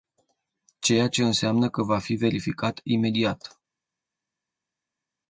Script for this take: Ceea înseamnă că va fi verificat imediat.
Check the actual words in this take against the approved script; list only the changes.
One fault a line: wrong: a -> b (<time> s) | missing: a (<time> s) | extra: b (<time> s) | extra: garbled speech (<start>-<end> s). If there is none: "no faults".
extra: ce (1.1 s)